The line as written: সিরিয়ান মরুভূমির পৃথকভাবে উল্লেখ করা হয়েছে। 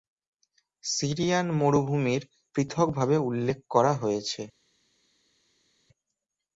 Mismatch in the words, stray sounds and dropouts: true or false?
false